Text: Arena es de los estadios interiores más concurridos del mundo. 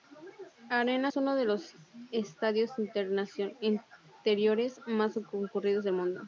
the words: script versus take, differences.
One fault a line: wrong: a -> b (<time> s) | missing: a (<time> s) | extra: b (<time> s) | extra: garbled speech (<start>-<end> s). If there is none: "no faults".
extra: uno (1.1 s)